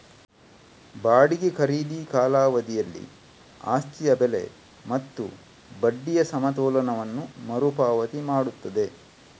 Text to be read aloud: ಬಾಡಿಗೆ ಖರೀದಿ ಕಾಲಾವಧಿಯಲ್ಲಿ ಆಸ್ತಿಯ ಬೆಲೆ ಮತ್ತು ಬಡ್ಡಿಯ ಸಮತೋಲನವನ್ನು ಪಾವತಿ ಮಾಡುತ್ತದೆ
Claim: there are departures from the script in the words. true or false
true